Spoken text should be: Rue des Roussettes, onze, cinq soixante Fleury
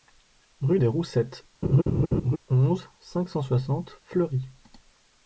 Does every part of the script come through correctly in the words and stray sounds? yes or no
no